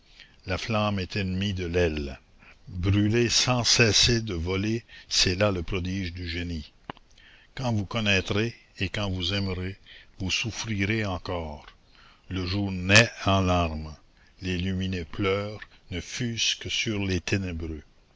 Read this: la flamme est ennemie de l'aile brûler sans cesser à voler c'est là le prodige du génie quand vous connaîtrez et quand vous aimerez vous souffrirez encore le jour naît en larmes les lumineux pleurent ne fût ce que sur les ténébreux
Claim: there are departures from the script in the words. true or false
true